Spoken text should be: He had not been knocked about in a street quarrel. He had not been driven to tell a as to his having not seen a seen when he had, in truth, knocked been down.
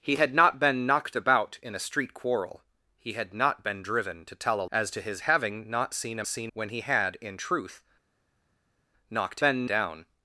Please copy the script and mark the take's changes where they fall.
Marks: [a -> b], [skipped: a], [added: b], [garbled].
He had not been knocked about in a street quarrel. He had not been driven to tell a as to his having not seen a seen when he had, in truth, knocked been down.